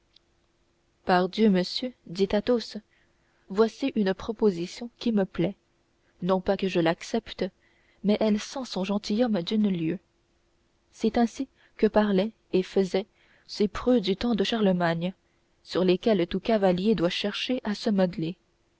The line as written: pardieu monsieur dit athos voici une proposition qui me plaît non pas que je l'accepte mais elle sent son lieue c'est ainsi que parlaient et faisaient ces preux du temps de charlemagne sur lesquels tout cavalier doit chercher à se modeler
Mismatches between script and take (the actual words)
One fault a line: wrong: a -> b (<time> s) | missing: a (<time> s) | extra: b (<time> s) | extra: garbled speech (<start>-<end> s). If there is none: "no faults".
extra: gentilhomme d'une (8.8 s)